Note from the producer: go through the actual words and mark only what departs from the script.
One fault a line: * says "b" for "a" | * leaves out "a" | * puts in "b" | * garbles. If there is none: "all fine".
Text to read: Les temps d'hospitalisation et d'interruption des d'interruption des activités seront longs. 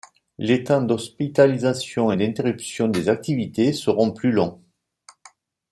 * leaves out "d'interruption des"
* puts in "plus"